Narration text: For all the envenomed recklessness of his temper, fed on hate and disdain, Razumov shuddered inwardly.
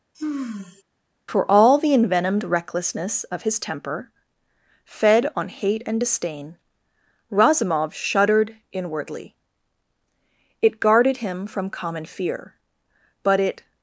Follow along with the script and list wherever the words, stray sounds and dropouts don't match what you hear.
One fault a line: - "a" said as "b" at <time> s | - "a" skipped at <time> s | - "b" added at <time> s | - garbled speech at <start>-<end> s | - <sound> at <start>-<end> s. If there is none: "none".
- sigh at 0.1-0.8 s
- "It guarded him from common fear but it" added at 10.6 s